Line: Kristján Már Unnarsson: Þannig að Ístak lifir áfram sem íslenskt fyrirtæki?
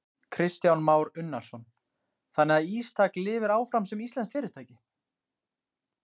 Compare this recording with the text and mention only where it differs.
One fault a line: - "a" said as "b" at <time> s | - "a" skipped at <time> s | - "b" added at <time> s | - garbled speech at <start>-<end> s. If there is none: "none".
none